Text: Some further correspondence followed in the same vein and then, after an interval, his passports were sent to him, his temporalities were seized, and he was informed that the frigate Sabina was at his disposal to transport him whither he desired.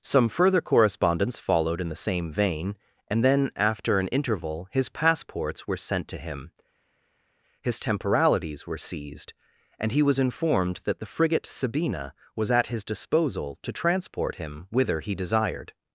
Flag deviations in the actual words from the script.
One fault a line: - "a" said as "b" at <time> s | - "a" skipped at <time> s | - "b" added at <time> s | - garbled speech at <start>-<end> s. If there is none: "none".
none